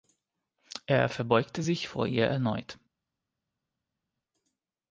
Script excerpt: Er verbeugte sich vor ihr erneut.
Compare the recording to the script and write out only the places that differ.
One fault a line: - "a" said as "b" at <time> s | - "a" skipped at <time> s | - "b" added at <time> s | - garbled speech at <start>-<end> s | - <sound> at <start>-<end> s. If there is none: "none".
none